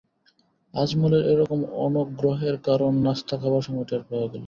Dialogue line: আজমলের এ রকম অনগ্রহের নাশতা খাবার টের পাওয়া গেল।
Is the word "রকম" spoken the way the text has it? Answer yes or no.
yes